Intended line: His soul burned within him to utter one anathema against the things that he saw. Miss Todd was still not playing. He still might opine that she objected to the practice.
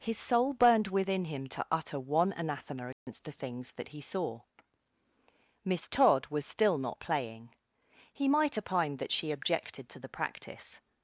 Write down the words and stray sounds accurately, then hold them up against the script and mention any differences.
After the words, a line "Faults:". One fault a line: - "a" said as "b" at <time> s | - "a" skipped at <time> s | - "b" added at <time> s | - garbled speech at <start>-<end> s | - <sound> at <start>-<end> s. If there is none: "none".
His soul burned within him to utter one anathema against the things that he saw. Miss Todd was still not playing. He might opine that she objected to the practice.
Faults:
- dropout at 2.9-3.1 s
- "still" skipped at 8.3 s